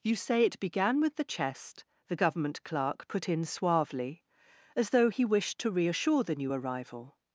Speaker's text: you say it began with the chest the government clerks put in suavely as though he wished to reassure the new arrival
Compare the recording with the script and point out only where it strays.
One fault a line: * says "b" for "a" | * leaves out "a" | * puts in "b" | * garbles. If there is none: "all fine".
* says "clerk" for "clerks"